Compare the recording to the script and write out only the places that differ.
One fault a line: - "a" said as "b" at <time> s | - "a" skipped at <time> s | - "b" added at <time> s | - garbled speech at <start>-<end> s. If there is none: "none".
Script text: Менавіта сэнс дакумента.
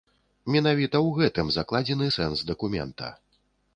- "ў гэтым закладзены" added at 1.1 s